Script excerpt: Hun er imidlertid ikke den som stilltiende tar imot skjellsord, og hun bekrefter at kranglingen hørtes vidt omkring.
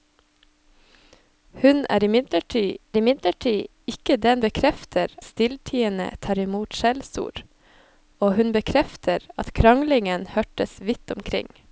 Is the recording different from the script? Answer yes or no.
yes